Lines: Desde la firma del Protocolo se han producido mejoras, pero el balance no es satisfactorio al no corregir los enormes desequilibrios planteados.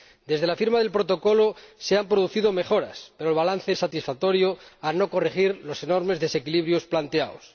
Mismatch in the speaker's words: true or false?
true